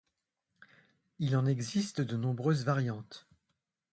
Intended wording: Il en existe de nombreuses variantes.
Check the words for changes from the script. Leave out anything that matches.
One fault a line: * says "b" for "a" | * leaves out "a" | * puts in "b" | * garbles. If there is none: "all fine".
all fine